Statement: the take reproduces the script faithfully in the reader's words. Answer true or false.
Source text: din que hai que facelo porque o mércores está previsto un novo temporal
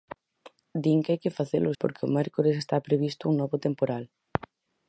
true